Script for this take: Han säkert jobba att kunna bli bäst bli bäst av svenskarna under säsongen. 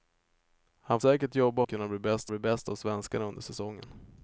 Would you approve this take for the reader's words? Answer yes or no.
yes